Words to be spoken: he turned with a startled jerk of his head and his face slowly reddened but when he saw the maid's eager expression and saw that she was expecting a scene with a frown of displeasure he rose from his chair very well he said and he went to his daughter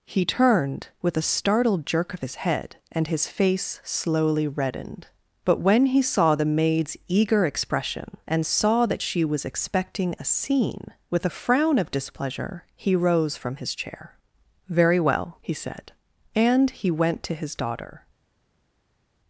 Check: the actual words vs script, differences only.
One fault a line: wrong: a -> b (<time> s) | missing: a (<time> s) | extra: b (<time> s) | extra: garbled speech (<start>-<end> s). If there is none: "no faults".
no faults